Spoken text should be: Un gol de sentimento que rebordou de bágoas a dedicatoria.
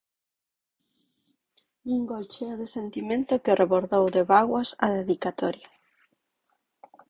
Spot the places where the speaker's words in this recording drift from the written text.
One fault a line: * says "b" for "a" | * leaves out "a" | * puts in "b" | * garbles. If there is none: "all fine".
* puts in "cheo"